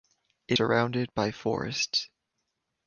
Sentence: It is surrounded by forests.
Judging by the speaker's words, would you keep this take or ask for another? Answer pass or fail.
fail